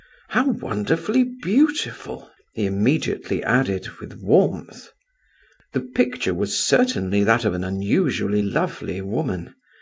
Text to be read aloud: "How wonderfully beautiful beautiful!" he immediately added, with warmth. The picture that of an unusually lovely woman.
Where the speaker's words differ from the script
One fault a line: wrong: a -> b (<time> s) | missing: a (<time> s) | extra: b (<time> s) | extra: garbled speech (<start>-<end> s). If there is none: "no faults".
missing: beautiful (2.3 s)
extra: was certainly (6.3 s)